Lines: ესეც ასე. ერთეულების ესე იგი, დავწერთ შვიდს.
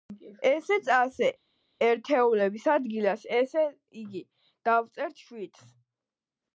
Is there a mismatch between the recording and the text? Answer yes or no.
yes